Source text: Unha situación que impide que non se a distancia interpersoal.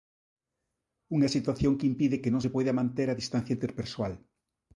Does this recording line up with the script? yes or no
no